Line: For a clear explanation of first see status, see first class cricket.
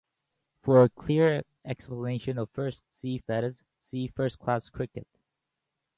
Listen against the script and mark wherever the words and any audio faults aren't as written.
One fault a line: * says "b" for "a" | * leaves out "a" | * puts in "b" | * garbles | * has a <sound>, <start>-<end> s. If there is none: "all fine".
all fine